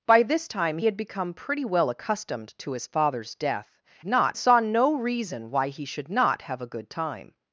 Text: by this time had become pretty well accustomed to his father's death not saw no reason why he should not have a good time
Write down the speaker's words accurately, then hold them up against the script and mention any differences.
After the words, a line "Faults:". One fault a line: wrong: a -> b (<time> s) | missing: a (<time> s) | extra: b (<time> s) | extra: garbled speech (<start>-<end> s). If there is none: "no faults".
by this time had become pretty well accustomed to his father's death not saw no reason why he should not have a good time
Faults:
no faults